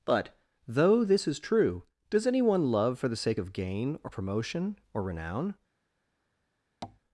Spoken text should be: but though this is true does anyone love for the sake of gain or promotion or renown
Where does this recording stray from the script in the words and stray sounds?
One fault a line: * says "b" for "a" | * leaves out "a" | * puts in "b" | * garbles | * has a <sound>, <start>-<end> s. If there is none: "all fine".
* has a tap, 6.8-7.0 s